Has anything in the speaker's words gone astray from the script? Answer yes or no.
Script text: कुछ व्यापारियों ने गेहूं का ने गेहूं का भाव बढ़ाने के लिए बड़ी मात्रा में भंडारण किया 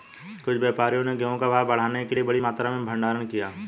yes